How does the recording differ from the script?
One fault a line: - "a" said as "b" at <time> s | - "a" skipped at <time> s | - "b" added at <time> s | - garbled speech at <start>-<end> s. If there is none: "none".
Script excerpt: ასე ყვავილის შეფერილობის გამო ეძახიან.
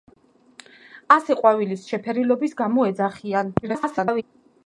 - garbled speech at 3.6-4.2 s